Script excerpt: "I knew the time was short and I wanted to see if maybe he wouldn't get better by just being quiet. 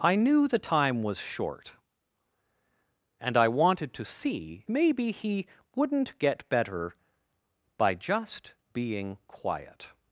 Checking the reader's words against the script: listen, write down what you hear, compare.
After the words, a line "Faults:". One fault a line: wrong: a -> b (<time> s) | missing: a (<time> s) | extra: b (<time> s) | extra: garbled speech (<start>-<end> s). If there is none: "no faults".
"I knew the time was short and I wanted to see maybe he wouldn't get better by just being quiet.
Faults:
missing: if (4.7 s)